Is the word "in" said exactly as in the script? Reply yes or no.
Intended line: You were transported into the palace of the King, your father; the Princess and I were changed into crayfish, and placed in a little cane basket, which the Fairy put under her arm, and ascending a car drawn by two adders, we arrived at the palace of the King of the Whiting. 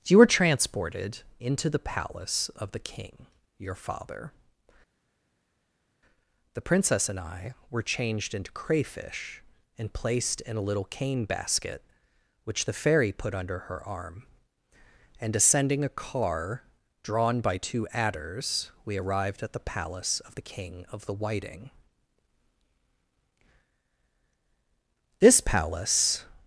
yes